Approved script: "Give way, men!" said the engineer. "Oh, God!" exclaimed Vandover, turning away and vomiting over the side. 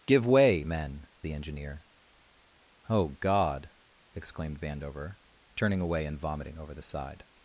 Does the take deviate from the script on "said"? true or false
true